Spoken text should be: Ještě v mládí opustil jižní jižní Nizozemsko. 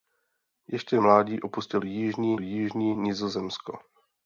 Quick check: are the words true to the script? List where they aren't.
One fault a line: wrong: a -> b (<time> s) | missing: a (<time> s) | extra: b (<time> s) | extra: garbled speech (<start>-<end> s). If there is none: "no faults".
no faults